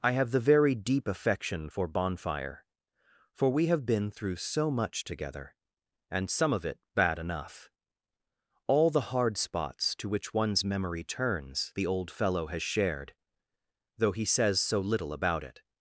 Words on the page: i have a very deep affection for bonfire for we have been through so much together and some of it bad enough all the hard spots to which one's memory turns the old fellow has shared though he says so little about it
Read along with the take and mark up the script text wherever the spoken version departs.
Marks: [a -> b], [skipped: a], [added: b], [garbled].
i have [a -> the] very deep affection for bonfire for we have been through so much together and some of it bad enough all the hard spots to which one's memory turns the old fellow has shared though he says so little about it